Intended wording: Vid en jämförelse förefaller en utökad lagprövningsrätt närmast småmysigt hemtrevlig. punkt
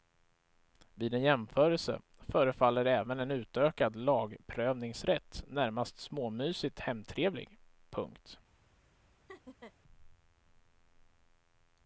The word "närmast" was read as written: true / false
true